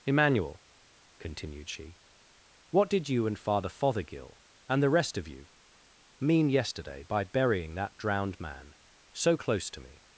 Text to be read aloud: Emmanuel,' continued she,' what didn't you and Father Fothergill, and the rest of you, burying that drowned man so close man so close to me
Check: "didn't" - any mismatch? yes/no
yes